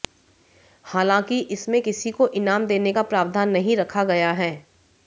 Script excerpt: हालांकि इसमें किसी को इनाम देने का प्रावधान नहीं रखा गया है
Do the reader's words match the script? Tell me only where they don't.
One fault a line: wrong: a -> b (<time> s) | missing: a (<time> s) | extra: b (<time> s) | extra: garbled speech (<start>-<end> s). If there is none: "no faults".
no faults